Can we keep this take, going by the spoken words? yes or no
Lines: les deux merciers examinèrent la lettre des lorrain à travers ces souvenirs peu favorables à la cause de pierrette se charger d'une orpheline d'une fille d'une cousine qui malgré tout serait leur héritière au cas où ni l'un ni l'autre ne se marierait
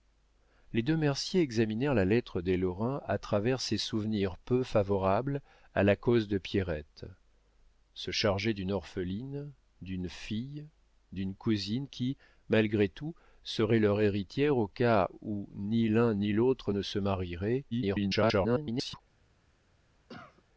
no